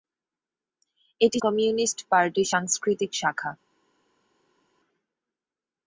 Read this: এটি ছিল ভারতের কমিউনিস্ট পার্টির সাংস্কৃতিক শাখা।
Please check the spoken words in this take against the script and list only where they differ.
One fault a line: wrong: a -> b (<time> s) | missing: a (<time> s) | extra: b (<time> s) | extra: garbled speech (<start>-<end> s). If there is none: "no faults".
missing: ছিল ভারতের (1.4 s)